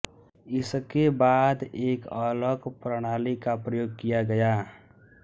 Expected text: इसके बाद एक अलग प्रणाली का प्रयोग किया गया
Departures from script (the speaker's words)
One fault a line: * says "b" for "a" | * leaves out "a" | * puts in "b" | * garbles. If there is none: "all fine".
all fine